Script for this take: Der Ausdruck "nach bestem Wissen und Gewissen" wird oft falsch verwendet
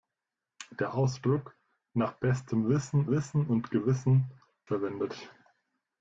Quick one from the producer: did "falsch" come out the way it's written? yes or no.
no